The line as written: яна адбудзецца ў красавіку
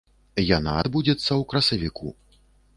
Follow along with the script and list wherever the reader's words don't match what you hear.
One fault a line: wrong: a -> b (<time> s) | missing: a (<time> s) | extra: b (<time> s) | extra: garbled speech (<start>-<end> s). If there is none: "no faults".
no faults